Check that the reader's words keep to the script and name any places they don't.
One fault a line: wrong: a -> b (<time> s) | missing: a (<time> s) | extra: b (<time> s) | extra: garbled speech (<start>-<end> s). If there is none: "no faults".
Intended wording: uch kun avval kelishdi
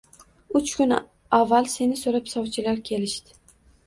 extra: seni so`rab sovchilar (1.7 s)